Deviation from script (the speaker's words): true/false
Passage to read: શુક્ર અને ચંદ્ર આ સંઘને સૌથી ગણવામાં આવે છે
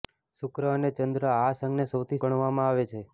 false